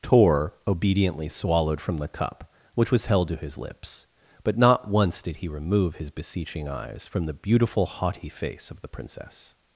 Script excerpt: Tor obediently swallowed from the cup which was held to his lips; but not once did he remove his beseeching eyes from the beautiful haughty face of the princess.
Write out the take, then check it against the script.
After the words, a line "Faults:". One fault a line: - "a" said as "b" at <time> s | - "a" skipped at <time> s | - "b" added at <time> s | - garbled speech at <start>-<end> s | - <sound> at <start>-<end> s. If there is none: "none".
Tor obediently swallowed from the cup which was held to his lips; but not once did he remove his beseeching eyes from the beautiful haughty face of the princess.
Faults:
none